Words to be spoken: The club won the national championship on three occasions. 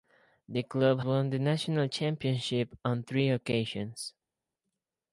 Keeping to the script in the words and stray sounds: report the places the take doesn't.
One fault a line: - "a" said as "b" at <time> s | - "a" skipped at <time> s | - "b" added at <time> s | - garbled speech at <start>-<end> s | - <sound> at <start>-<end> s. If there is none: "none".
none